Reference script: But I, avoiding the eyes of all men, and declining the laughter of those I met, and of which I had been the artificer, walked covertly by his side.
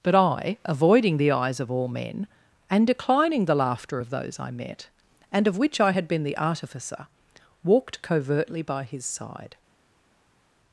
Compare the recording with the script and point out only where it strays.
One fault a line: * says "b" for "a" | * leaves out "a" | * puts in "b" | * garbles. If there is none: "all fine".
all fine